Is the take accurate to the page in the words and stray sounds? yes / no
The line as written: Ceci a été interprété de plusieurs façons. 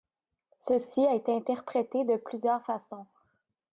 yes